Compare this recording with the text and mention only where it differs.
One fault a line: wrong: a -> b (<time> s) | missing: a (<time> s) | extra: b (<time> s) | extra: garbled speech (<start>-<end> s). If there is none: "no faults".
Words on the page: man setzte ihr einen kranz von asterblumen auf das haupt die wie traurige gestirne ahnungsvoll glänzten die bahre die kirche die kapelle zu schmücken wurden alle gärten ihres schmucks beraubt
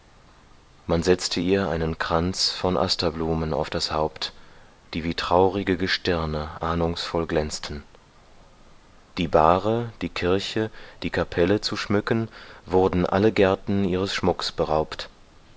no faults